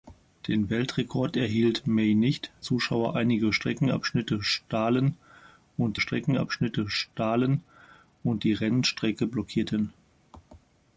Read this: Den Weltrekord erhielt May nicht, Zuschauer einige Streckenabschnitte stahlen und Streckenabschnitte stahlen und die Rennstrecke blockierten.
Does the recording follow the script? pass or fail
pass